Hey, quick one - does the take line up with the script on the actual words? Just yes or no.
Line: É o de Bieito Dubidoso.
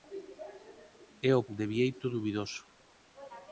yes